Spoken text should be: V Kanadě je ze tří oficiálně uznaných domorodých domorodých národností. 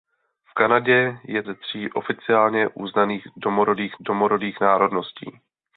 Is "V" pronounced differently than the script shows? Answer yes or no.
no